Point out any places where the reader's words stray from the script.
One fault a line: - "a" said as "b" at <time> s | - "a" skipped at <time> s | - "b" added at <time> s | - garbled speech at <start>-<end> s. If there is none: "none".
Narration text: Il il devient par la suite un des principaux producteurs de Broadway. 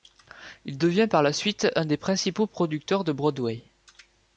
- "il" skipped at 0.8 s